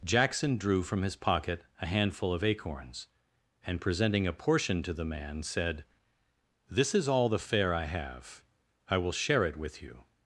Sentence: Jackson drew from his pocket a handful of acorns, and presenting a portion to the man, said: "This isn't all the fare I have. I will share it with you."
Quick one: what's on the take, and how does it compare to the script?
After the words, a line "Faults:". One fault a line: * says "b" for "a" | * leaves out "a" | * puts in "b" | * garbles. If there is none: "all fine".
Jackson drew from his pocket a handful of acorns, and presenting a portion to the man, said: "This is all the fare I have. I will share it with you."
Faults:
* says "is" for "isn't"